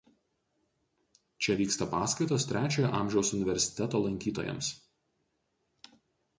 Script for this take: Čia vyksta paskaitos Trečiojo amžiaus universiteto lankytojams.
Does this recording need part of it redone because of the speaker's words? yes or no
no